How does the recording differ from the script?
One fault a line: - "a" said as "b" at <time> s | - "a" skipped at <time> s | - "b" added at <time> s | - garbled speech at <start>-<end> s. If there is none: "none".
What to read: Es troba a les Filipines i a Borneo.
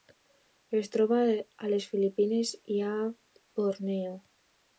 none